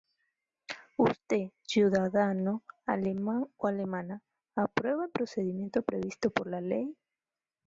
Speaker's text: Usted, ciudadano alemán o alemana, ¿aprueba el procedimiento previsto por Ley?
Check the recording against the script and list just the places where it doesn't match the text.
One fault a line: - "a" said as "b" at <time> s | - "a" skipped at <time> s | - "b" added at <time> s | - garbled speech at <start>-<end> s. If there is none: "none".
- "la" added at 6.5 s